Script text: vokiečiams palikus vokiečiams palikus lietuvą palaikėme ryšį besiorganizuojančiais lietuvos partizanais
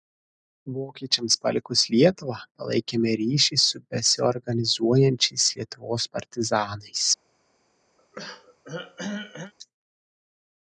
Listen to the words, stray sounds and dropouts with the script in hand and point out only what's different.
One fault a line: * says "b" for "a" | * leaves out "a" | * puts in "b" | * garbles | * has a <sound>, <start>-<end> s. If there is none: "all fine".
* leaves out "vokiečiams palikus"
* puts in "su"
* has a throat clearing, 8.0-9.5 s